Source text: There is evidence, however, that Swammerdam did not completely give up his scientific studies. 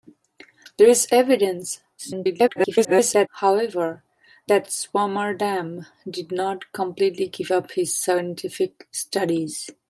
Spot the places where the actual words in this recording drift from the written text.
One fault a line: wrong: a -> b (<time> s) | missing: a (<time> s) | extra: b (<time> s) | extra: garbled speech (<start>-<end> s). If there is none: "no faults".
extra: garbled speech (2.0-3.3 s)